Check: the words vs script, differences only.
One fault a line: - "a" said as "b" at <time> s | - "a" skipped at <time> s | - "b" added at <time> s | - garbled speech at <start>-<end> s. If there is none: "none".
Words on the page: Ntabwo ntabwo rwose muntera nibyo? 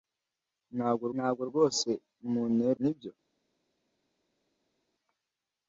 none